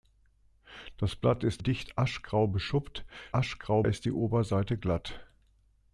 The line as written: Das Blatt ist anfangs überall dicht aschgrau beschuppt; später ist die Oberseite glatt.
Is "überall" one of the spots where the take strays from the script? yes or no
yes